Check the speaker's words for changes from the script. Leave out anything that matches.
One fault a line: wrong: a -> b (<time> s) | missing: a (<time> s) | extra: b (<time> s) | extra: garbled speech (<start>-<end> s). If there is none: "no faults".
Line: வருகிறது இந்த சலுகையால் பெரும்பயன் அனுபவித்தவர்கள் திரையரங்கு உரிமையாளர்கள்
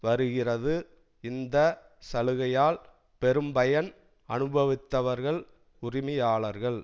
missing: திரையரங்கு (5.4 s)